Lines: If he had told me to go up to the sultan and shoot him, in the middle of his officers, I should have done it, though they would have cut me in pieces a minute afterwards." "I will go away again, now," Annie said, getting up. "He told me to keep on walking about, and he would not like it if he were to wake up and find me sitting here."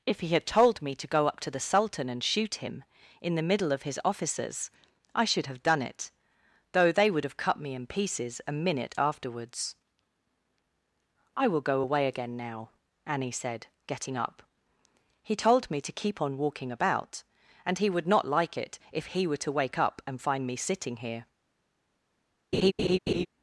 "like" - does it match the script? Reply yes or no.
yes